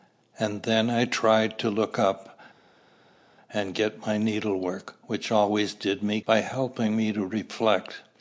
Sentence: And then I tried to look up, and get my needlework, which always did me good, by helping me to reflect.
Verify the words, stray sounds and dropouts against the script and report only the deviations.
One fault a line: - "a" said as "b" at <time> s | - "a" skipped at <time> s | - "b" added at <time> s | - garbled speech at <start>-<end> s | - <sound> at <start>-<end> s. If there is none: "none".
- "good" skipped at 6.2 s